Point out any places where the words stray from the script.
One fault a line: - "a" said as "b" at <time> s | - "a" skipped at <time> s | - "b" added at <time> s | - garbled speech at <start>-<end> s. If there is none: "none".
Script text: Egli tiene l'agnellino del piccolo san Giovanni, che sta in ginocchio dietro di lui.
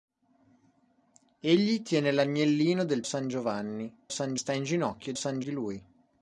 - "piccolo" skipped at 3.0 s
- "che" said as "san" at 4.1 s
- "dietro" said as "san" at 5.1 s